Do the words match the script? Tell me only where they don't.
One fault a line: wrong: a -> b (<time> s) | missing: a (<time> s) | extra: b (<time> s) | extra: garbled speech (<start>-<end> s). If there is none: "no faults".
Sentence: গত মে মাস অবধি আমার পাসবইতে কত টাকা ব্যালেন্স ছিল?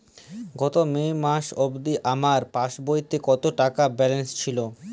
no faults